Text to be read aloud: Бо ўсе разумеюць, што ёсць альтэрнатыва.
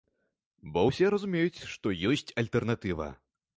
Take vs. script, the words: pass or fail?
pass